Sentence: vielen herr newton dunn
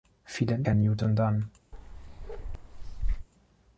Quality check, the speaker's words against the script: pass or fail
pass